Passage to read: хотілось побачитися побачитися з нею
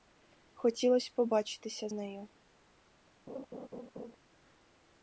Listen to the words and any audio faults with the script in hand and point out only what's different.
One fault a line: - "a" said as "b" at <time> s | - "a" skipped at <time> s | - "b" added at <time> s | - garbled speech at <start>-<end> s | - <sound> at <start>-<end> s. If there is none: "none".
- "побачитися" skipped at 1.9 s
- laugh at 3.3-4.2 s